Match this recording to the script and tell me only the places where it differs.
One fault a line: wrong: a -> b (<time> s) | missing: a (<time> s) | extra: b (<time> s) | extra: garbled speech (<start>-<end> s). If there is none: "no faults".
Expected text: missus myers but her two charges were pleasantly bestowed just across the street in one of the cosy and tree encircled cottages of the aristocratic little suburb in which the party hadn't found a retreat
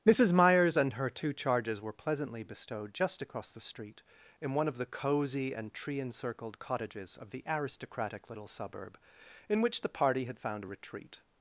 wrong: but -> and (0.8 s)
wrong: hadn't -> had (10.2 s)